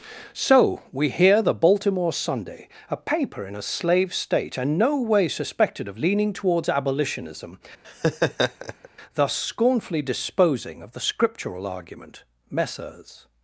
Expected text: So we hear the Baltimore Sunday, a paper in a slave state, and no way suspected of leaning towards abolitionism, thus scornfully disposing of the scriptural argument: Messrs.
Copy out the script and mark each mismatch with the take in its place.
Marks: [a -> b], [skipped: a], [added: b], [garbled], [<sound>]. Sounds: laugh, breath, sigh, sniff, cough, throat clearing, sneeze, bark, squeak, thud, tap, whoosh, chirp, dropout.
So we hear the Baltimore Sunday, a paper in a slave state, and no way suspected of leaning towards abolitionism, [laugh] thus scornfully disposing of the scriptural argument: Messrs.